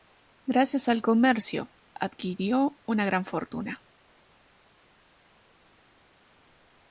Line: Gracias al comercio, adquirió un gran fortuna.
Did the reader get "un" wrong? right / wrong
wrong